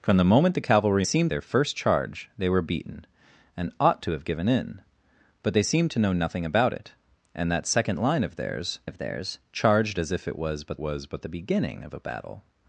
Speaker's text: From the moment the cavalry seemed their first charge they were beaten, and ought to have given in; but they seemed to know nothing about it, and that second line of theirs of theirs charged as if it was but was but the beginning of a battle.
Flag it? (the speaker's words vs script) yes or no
no